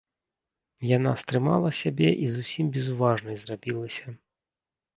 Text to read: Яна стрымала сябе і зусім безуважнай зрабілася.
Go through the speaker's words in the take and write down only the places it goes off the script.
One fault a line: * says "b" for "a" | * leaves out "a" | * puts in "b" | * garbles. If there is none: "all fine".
all fine